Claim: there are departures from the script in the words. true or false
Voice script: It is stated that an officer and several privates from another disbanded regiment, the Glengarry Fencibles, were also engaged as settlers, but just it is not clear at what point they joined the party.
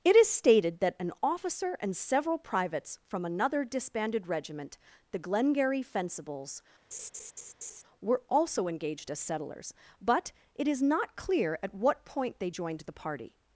true